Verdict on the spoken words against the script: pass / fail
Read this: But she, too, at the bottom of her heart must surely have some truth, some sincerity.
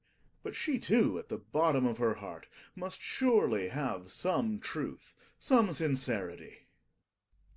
pass